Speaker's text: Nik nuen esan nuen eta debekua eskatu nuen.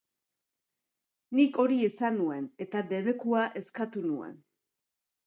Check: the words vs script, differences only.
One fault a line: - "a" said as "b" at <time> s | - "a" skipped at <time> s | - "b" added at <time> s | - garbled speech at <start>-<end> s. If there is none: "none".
- "nuen" said as "hori" at 1.6 s